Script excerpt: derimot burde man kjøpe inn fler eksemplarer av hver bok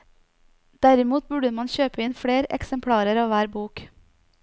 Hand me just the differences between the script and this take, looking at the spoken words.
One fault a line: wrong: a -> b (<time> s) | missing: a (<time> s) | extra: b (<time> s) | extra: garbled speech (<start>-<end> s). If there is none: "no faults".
no faults